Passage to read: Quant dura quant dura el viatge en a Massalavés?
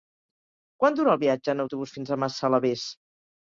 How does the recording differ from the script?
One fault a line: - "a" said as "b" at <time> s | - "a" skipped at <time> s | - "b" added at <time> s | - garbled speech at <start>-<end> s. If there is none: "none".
- "quant dura" skipped at 1.1 s
- "autobús fins" added at 1.6 s